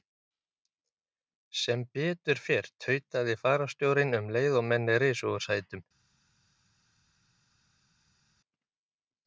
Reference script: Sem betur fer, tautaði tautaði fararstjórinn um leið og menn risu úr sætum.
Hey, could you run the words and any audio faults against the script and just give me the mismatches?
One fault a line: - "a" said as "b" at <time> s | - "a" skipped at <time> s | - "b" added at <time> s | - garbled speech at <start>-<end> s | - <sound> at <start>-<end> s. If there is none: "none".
- "tautaði" skipped at 3.4 s